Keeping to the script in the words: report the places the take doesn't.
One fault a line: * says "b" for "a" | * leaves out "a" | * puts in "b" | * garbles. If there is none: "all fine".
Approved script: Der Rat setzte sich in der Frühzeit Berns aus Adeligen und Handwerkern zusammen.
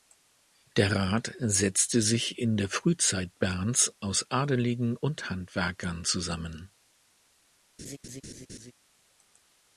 all fine